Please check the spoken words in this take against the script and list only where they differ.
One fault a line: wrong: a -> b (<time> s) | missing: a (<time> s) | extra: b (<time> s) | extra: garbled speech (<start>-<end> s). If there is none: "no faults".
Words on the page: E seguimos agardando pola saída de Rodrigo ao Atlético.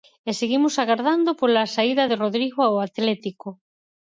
no faults